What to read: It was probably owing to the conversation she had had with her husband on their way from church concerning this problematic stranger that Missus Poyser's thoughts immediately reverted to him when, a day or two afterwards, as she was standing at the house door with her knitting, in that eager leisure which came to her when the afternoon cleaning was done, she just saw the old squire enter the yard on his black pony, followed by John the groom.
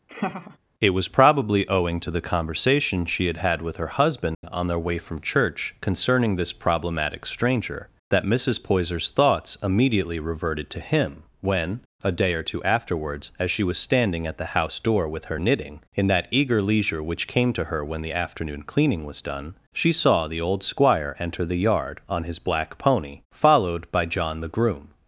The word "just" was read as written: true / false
false